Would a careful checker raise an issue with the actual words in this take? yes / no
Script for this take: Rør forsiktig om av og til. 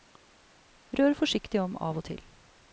no